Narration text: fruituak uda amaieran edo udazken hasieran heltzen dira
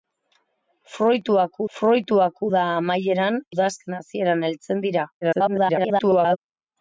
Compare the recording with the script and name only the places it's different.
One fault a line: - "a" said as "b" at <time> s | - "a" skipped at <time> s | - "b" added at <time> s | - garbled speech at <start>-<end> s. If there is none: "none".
- "fruituak" added at 1.8 s
- "edo" skipped at 3.4 s
- garbled speech at 5.2-6.4 s